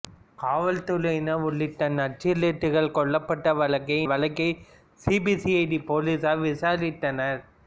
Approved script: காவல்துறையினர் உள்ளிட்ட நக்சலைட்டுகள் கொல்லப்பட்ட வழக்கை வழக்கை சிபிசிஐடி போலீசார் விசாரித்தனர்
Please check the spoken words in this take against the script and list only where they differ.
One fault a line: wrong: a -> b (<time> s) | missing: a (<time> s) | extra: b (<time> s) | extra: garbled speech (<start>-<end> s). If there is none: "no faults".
no faults